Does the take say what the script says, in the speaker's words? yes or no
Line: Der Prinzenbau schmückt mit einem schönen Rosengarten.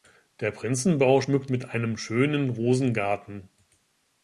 yes